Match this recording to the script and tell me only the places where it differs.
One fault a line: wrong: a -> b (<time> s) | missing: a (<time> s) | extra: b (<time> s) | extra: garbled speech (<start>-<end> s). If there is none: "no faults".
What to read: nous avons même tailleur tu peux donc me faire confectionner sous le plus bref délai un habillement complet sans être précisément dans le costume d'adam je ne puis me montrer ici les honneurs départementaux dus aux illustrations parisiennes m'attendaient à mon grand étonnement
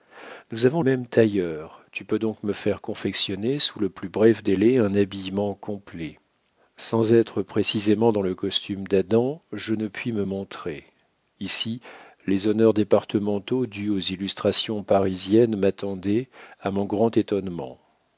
no faults